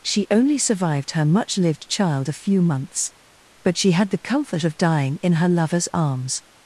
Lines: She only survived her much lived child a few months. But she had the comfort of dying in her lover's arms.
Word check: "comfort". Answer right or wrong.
right